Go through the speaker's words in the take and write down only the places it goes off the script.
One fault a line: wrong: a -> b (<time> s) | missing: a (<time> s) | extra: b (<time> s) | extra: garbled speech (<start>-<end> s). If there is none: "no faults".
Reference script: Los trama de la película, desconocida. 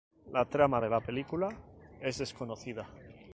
wrong: Los -> La (0.3 s)
extra: es (2.0 s)